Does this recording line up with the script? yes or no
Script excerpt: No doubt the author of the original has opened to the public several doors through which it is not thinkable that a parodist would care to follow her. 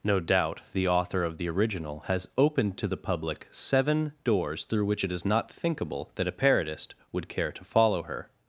no